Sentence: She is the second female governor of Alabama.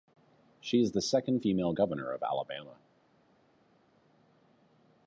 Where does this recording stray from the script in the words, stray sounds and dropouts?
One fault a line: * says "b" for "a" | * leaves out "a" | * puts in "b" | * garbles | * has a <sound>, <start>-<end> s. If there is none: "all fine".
all fine